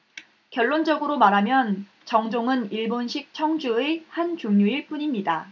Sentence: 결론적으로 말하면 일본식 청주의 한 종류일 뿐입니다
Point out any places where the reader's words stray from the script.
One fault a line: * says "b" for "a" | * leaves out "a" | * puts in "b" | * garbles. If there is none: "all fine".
* puts in "정종은"